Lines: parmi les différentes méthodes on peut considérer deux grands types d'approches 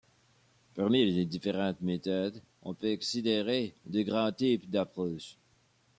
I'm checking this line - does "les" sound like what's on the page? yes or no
yes